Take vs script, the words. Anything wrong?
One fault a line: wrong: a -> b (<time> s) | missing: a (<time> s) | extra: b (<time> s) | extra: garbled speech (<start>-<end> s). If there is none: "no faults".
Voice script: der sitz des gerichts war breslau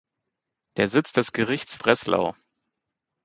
missing: war (1.8 s)